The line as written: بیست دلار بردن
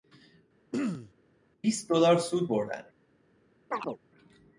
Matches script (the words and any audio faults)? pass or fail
fail